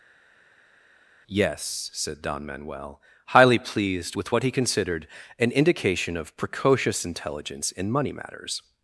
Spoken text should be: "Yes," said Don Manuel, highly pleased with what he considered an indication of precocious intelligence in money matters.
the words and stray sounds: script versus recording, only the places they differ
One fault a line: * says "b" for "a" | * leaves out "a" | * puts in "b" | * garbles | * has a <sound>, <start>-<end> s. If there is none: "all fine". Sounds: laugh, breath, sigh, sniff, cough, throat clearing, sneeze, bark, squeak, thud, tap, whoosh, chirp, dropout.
all fine